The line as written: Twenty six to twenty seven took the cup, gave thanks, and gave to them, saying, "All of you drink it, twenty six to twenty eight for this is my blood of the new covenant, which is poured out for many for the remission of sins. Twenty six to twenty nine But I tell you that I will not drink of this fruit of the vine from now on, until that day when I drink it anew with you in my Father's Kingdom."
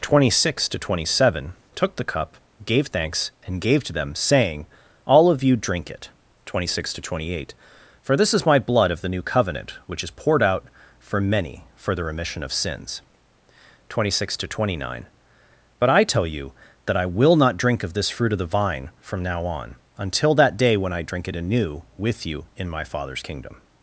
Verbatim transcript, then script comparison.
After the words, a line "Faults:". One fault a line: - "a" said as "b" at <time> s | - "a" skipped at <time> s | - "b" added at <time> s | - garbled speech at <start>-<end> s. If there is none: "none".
Twenty six to twenty seven took the cup, gave thanks, and gave to them, saying, "All of you drink it, twenty six to twenty eight for this is my blood of the new covenant, which is poured out for many for the remission of sins. Twenty six to twenty nine But I tell you that I will not drink of this fruit of the vine from now on, until that day when I drink it anew with you in my Father's Kingdom."
Faults:
none